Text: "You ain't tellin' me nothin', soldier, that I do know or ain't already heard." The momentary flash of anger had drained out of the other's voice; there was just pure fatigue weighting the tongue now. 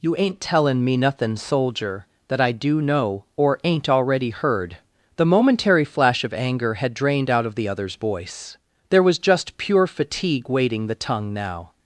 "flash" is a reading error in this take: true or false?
false